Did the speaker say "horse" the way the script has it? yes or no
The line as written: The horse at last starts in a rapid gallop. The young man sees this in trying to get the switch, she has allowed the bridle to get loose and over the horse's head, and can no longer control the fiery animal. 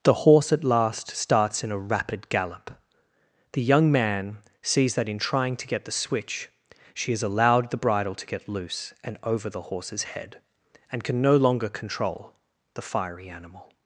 yes